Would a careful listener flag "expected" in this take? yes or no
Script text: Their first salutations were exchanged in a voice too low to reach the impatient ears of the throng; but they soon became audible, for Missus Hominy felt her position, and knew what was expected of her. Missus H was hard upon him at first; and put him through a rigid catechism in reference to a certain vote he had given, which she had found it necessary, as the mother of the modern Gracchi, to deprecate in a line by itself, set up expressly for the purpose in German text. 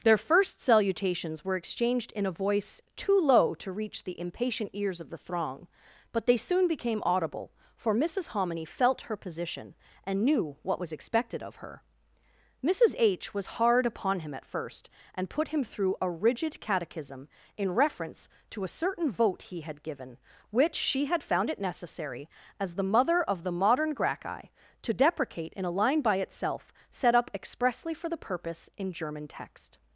no